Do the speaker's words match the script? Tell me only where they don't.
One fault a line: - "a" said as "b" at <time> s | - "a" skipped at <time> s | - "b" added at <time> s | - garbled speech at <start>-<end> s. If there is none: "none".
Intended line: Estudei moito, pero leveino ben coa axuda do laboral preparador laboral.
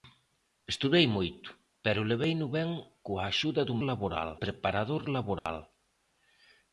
none